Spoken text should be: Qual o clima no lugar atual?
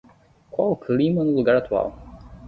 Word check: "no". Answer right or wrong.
right